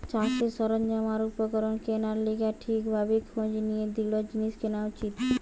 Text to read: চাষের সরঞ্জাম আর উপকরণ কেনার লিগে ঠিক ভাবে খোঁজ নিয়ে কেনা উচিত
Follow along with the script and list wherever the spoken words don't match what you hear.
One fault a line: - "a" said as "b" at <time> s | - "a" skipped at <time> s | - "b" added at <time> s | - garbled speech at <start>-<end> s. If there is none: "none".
- "দৃঢ় জিনিস" added at 3.9 s